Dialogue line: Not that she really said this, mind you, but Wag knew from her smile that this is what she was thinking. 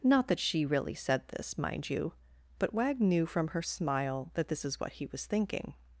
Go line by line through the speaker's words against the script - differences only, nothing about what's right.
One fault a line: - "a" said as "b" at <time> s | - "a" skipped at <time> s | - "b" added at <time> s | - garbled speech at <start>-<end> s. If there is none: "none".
- "she" said as "he" at 4.9 s